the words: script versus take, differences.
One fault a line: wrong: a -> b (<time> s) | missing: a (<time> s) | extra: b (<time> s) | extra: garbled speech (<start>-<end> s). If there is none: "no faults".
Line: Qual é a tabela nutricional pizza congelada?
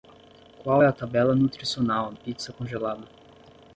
no faults